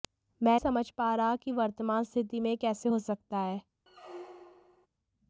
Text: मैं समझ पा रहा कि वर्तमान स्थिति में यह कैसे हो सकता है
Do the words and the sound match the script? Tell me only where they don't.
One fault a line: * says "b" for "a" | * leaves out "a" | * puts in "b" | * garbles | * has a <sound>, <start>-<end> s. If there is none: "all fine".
* has a squeak, 3.9-4.9 s